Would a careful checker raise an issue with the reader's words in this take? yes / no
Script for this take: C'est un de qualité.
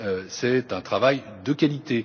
yes